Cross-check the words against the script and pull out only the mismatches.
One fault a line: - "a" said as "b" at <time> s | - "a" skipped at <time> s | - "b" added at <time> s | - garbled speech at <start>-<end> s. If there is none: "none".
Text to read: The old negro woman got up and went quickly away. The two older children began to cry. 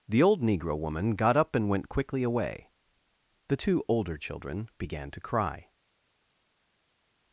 none